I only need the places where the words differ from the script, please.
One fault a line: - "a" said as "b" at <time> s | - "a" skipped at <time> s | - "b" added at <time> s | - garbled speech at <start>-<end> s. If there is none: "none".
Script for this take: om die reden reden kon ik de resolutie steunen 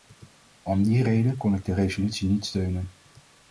- "reden" skipped at 1.4 s
- "niet" added at 2.3 s